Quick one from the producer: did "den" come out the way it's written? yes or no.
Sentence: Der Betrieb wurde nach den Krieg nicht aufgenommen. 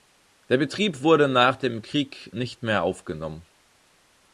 no